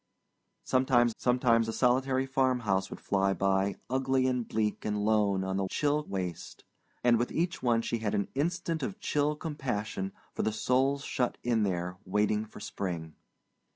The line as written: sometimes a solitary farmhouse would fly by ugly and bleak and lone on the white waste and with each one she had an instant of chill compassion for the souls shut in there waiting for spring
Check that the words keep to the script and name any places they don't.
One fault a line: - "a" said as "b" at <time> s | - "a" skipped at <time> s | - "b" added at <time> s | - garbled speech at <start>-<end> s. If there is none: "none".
- "sometimes" added at 1.2 s
- "white" said as "chill" at 5.7 s